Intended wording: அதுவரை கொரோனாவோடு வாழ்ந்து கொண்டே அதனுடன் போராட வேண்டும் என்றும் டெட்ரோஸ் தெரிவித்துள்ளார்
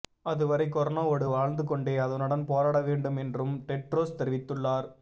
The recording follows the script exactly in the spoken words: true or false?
true